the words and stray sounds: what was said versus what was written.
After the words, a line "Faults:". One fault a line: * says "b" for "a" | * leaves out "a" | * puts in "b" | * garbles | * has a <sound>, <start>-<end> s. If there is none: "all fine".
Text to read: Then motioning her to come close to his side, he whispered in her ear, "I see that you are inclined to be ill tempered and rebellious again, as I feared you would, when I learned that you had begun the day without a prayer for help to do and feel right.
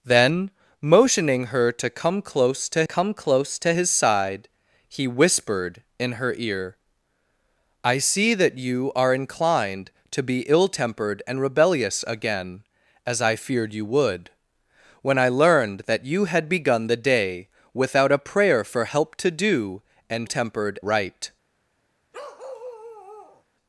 Then motioning her to come close to come close to his side, he whispered in her ear, "I see that you are inclined to be ill tempered and rebellious again, as I feared you would, when I learned that you had begun the day without a prayer for help to do and tempered right.
Faults:
* puts in "come close to"
* says "tempered" for "feel"
* has a bark, 22.1-23.4 s